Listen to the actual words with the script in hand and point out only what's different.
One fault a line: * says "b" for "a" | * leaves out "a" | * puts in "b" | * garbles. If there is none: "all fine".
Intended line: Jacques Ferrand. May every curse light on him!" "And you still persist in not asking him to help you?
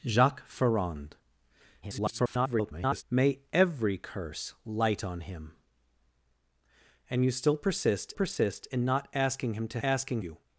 * garbles
* puts in "persist"
* says "asking" for "help"